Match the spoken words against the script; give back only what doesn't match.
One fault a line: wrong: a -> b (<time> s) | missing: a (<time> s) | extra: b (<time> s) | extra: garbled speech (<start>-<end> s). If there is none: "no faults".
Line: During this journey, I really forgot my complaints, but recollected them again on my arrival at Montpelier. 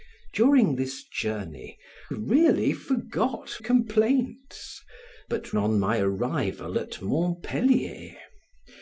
missing: I (1.8 s)
missing: my (3.6 s)
missing: recollected them again (5.6 s)